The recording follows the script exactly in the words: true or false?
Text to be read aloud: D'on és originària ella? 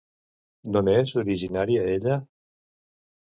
true